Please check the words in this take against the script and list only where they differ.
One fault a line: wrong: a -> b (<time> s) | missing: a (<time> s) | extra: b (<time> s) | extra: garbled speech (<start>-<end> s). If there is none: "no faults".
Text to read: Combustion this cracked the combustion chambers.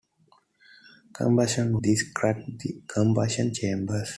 no faults